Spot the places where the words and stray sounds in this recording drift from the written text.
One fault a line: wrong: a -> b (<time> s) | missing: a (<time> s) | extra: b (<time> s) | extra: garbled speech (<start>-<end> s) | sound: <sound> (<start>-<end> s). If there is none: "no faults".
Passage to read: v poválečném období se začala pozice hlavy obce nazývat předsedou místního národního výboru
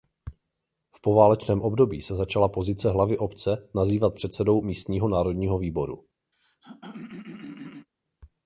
sound: throat clearing (6.3-7.9 s)